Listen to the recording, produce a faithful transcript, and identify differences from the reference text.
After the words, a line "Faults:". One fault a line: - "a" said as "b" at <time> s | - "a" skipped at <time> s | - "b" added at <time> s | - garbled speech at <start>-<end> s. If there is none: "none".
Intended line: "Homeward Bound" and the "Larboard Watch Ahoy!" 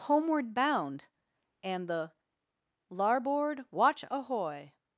"Homeward Bound" and the "Larboard Watch Ahoy!"
Faults:
none